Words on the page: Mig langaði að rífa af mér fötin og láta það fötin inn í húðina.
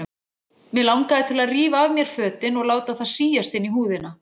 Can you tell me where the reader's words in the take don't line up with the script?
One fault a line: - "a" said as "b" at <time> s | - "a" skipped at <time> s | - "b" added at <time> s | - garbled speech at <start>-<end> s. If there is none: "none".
- "til" added at 1.3 s
- "fötin" said as "síast" at 3.1 s